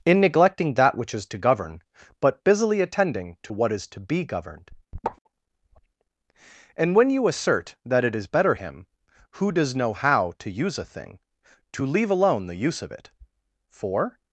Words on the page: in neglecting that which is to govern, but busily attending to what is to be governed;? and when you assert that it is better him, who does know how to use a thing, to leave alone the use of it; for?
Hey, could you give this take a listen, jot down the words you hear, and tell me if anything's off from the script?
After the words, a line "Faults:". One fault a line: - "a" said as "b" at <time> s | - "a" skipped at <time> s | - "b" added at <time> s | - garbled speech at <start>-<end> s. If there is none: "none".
in neglecting that which is to govern, but busily attending to what is to be governed;? and when you assert that it is better him, who does know how to use a thing, to leave alone the use of it; for?
Faults:
none